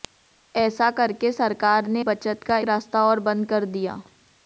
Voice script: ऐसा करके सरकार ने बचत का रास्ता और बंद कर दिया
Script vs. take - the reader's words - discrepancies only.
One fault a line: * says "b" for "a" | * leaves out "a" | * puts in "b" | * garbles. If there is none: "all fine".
all fine